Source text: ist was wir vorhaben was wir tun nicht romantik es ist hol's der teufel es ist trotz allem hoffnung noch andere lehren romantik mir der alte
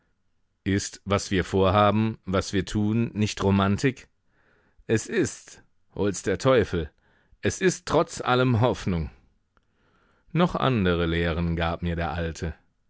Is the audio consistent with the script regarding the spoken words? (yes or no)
no